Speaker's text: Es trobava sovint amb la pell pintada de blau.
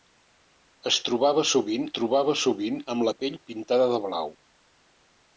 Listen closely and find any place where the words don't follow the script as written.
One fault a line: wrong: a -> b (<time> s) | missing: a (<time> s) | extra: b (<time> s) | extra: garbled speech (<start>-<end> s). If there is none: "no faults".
extra: trobava sovint (2.0 s)